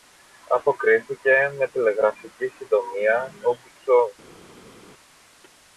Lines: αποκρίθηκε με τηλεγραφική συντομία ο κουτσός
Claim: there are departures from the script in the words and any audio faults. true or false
false